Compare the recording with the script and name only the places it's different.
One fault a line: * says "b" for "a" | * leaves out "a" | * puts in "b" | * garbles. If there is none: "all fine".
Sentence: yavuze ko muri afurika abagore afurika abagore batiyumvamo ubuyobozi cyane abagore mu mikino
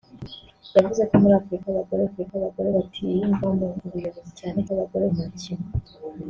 all fine